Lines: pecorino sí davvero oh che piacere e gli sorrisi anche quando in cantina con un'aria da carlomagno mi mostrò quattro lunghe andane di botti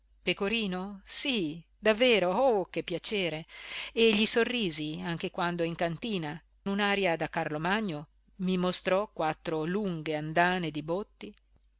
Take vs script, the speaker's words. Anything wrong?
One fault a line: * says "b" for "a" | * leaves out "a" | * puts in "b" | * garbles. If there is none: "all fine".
* leaves out "con"